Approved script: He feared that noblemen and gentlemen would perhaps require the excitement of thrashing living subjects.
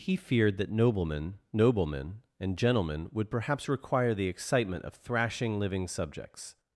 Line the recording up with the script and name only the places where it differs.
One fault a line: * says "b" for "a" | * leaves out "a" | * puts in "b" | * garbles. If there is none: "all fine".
* puts in "noblemen"